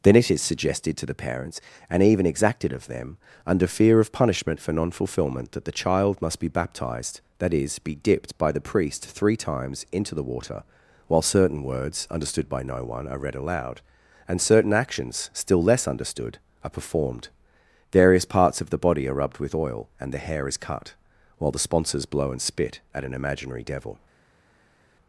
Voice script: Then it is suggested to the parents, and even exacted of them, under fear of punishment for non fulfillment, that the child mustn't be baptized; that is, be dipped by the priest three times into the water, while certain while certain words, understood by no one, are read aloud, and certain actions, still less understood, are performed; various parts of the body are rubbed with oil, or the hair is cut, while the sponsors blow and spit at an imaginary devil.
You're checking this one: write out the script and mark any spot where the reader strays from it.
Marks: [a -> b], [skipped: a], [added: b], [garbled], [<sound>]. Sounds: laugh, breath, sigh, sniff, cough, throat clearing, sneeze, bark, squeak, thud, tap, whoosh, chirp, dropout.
Then it is suggested to the parents, and even exacted of them, under fear of punishment for non fulfillment, that the child [mustn't -> must] be baptized; that is, be dipped by the priest three times into the water, while certain [skipped: while certain] words, understood by no one, are read aloud, and certain actions, still less understood, are performed; various parts of the body are rubbed with oil, [or -> and] the hair is cut, while the sponsors blow and spit at an imaginary devil.